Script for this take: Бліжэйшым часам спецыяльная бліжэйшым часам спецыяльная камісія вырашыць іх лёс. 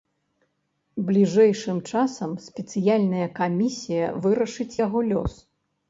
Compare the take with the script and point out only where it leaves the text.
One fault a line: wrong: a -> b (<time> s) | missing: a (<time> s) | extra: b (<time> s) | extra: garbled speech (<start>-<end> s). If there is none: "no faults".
missing: бліжэйшым часам спецыяльная (3.3 s)
wrong: іх -> яго (4.9 s)